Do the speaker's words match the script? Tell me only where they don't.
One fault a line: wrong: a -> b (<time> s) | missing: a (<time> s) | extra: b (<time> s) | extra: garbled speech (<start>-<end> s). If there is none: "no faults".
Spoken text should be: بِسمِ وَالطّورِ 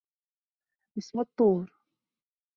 no faults